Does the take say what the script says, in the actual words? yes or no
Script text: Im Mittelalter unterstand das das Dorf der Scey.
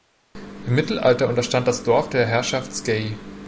no